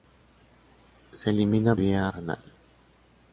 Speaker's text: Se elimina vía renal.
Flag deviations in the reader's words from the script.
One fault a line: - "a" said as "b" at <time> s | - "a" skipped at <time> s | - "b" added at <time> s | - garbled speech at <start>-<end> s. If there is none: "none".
none